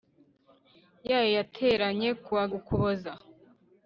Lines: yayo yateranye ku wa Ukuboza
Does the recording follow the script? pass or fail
pass